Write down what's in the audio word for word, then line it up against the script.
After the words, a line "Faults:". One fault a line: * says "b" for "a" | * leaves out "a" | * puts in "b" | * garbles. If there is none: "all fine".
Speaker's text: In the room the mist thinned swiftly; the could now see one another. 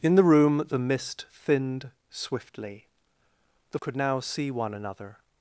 In the room the mist thinned swiftly; the could now see one another.
Faults:
all fine